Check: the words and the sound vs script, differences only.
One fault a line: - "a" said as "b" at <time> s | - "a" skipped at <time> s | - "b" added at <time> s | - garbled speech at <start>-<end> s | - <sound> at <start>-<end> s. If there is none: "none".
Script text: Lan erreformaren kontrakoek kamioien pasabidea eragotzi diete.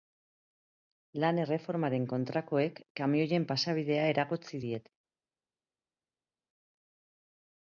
none